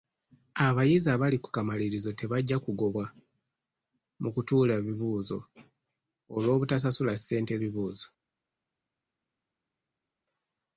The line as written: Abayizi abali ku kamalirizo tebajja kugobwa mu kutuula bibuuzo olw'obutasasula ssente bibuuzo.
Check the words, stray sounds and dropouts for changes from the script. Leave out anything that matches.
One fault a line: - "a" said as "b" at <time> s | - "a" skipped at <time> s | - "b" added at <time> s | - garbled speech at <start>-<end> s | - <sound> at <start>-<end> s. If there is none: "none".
none